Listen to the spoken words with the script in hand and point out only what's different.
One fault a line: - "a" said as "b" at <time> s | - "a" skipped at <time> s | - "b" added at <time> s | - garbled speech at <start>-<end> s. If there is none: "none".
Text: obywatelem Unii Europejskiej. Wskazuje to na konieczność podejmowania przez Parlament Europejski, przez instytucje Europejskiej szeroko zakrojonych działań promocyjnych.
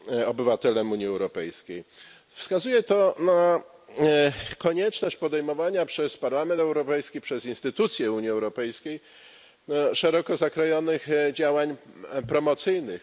- "Unii" added at 8.1 s